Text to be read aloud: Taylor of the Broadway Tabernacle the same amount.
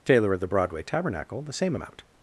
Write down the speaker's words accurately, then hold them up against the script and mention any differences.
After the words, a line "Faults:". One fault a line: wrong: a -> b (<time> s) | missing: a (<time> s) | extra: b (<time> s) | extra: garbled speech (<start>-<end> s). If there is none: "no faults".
Taylor of the Broadway Tabernacle the same amount.
Faults:
no faults